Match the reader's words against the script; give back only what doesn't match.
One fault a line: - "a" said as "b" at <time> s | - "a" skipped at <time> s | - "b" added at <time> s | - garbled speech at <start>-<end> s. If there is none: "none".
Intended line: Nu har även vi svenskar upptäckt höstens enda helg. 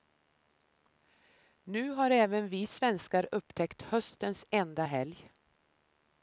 none